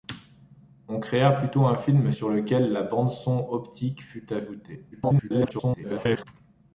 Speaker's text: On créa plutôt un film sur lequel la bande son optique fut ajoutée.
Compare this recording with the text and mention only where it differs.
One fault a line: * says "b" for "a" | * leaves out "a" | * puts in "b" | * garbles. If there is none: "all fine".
* garbles